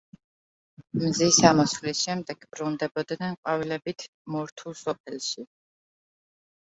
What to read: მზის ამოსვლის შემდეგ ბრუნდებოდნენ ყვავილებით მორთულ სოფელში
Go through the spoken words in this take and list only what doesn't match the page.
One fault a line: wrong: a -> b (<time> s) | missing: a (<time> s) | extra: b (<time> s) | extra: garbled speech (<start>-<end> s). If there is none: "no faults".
no faults